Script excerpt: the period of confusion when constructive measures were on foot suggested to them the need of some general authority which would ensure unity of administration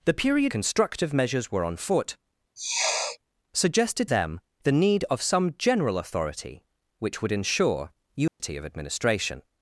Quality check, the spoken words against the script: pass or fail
fail